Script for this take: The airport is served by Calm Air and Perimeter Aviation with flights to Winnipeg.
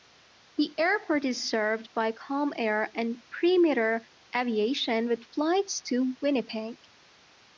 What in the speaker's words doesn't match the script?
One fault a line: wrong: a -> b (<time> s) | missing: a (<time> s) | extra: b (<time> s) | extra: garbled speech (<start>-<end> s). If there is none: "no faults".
no faults